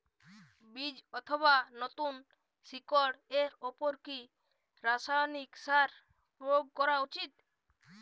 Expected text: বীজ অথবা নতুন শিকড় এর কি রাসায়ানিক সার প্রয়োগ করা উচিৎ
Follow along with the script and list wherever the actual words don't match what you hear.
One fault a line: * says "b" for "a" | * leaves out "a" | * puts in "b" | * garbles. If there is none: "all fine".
* puts in "উপর"